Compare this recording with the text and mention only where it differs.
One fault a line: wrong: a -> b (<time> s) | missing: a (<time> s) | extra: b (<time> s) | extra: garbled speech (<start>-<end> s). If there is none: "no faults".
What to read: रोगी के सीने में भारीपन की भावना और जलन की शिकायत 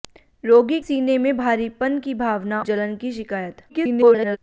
missing: के (0.8 s)
missing: और (2.6 s)
extra: garbled speech (3.7-4.4 s)